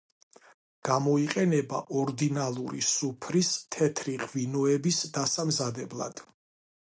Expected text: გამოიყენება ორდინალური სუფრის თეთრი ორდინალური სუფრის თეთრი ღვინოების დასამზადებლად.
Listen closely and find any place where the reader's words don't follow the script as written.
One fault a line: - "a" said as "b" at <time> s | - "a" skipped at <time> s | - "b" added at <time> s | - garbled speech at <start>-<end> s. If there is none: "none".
- "ორდინალური სუფრის თეთრი" skipped at 4.2 s